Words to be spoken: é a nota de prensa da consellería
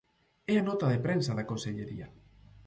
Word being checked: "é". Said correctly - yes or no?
yes